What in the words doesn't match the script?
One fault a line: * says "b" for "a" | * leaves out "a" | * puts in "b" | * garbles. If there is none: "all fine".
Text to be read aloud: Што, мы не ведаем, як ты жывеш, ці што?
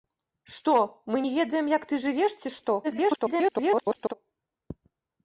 * garbles